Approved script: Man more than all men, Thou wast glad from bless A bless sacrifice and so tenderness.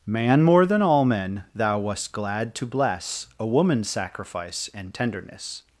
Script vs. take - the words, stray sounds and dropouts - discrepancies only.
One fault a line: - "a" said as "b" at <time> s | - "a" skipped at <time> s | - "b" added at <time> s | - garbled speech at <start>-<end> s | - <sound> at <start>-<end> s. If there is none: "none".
- "from" said as "to" at 2.5 s
- "bless" said as "woman's" at 3.5 s
- "so" skipped at 5.0 s